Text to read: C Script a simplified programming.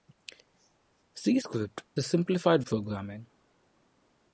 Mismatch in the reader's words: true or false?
false